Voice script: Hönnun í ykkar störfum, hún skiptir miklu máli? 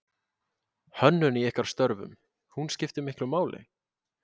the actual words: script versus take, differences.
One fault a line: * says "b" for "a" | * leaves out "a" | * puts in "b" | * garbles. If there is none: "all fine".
all fine